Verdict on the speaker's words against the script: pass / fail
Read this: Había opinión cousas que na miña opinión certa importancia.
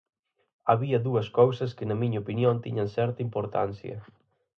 fail